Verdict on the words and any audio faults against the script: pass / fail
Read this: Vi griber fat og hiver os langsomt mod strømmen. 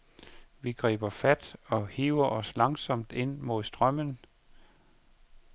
fail